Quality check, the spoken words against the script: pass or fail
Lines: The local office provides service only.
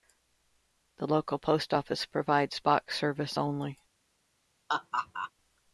fail